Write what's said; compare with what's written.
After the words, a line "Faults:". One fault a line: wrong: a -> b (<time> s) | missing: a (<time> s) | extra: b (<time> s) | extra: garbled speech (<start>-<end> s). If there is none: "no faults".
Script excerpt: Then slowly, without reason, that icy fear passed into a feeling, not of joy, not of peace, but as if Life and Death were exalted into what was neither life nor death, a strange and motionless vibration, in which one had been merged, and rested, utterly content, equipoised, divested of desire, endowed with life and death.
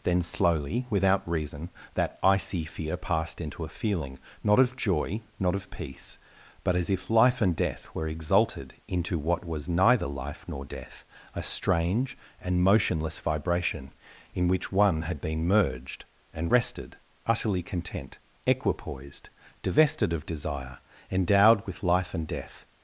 Then slowly, without reason, that icy fear passed into a feeling, not of joy, not of peace, but as if Life and Death were exalted into what was neither life nor death, a strange and motionless vibration, in which one had been merged, and rested, utterly content, equipoised, divested of desire, endowed with life and death.
Faults:
no faults